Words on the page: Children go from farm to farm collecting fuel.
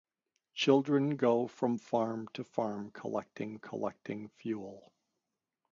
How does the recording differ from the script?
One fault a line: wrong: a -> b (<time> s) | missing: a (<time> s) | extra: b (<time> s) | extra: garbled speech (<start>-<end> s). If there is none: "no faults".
extra: collecting (3.6 s)